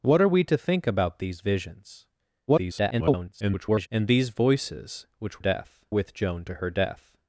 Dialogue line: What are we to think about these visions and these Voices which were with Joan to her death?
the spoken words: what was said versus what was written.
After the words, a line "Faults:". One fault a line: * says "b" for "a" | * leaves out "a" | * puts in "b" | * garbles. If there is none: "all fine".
What are we to think about these visions [garbled] and these Voices which death with Joan to her death?
Faults:
* garbles
* says "death" for "were"